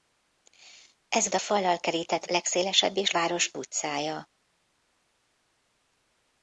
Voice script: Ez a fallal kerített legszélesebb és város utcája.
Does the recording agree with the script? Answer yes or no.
yes